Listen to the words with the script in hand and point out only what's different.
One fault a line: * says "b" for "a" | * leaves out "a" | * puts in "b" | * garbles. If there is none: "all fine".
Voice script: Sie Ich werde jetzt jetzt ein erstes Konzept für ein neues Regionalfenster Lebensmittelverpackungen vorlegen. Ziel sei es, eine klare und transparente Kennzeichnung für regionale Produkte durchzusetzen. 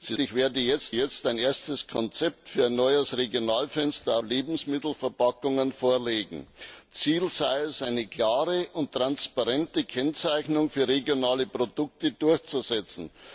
all fine